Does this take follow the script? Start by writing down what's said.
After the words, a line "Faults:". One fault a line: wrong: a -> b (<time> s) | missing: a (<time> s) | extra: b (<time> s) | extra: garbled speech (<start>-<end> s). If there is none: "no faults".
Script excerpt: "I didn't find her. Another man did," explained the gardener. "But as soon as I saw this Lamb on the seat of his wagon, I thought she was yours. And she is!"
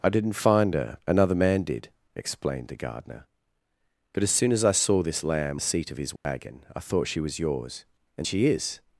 "I didn't find her. Another man did," explained the gardener. "But as soon as I saw this Lamb the seat of his wagon, I thought she was yours. And she is!"
Faults:
missing: on (5.6 s)